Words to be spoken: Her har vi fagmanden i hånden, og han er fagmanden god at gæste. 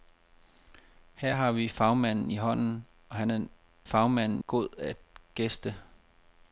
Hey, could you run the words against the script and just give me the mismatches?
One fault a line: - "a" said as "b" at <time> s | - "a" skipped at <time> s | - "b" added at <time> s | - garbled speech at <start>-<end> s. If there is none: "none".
none